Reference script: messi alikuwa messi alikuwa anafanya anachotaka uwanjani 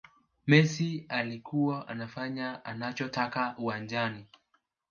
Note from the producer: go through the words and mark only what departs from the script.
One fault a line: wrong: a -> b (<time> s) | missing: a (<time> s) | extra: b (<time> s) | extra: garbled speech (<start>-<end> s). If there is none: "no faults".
missing: messi alikuwa (1.9 s)